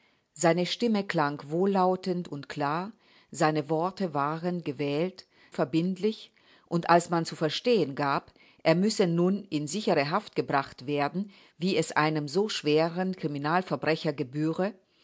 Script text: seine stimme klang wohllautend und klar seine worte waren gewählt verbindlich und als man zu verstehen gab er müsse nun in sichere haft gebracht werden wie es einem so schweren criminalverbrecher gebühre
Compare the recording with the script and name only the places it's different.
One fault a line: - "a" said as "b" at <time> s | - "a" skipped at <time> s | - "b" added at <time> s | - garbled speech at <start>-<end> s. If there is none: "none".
none